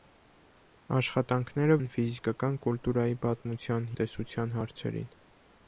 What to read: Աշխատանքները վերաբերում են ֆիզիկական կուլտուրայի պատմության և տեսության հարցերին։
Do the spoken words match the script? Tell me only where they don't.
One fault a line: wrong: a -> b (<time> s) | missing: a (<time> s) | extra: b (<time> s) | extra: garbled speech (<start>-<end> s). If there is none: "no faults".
missing: վերաբերում (1.8 s)
missing: և (3.9 s)